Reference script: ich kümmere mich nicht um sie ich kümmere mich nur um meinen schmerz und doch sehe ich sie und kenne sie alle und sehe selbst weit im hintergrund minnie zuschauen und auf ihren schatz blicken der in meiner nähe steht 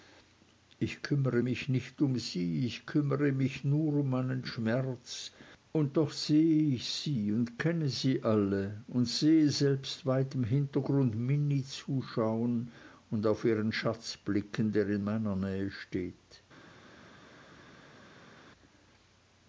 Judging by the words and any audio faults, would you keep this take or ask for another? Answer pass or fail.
pass